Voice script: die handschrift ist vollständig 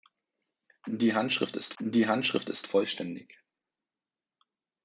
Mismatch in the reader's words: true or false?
true